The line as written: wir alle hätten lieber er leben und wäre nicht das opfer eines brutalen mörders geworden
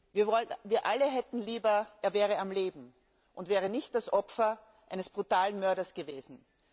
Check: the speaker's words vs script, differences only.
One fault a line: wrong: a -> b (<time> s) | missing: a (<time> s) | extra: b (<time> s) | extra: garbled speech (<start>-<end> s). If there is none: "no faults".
extra: wäre am (2.1 s)